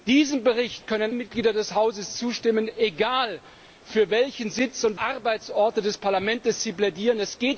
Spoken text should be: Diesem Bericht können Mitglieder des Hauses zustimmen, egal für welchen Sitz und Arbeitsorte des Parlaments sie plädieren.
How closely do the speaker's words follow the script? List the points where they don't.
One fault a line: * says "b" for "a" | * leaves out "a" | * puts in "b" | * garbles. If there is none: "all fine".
all fine